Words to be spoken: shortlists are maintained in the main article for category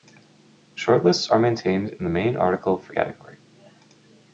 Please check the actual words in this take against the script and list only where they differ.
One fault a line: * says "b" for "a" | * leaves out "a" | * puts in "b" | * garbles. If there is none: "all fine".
all fine